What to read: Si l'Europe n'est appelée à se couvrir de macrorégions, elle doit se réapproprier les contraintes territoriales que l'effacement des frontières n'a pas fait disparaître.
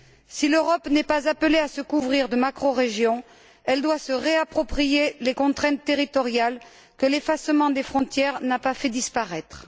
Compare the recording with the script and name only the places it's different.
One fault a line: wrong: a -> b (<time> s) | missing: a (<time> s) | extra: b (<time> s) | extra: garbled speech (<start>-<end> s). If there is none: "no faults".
extra: pas (1.0 s)